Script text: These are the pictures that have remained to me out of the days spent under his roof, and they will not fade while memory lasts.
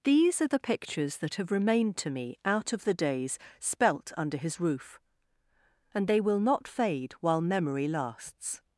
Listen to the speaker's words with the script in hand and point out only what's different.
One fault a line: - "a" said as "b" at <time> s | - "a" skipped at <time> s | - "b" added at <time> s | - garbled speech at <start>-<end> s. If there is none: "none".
- "spent" said as "spelt" at 3.6 s